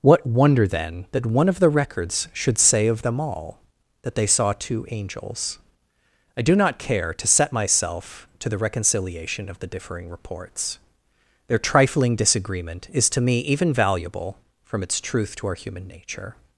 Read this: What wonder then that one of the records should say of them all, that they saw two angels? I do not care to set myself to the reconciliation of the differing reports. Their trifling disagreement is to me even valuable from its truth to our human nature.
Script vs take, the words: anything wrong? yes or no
no